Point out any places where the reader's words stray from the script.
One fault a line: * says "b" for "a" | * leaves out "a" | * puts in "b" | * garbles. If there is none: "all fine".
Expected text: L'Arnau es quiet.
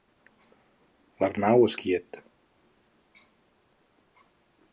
all fine